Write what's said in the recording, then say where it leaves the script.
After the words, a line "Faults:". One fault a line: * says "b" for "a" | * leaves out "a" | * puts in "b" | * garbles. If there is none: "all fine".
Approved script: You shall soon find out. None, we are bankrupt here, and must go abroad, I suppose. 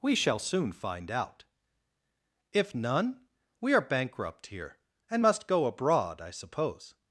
We shall soon find out. If none, we are bankrupt here, and must go abroad, I suppose.
Faults:
* says "We" for "You"
* puts in "If"